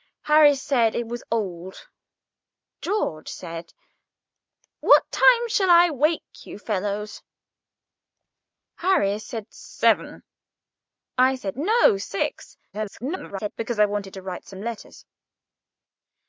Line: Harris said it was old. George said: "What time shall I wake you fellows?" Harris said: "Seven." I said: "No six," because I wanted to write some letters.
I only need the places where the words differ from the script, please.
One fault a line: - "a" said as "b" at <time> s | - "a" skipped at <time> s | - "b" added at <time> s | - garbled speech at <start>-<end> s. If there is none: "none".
- garbled speech at 12.7-13.5 s